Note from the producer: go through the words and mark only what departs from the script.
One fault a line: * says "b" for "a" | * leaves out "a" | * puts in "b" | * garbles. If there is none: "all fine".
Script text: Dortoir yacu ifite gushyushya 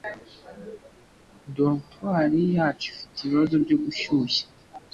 * puts in "ibibazo byo"